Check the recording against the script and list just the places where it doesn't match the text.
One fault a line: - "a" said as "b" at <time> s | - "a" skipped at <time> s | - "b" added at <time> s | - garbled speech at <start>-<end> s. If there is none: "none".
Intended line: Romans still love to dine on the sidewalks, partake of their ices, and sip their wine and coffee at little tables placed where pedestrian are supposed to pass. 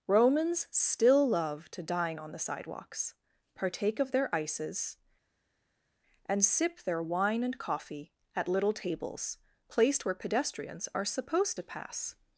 - "pedestrian" said as "pedestrians" at 10.1 s